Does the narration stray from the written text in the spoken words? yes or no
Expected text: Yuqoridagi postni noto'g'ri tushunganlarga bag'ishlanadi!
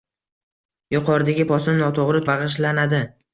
yes